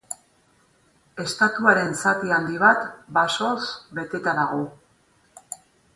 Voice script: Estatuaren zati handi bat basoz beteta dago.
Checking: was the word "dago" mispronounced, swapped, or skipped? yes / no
no